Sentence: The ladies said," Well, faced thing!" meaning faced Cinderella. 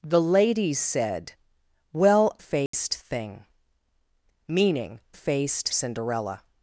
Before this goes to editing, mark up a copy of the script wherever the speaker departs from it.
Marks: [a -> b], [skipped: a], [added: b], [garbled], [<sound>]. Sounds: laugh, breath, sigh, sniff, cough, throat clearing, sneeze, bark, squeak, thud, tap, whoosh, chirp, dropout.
The ladies said," Well, faced [dropout] thing!" meaning faced Cinderella.